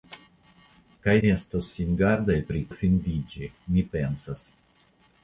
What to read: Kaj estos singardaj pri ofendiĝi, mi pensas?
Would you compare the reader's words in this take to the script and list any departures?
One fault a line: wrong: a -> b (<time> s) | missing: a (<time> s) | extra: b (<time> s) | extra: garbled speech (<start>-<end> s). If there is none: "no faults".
no faults